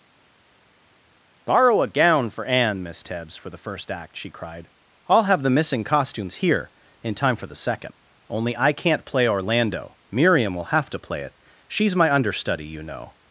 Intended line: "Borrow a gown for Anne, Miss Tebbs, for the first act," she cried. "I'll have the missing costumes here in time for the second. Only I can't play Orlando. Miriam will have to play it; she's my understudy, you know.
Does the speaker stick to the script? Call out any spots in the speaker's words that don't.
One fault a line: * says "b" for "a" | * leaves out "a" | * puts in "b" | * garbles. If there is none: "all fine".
all fine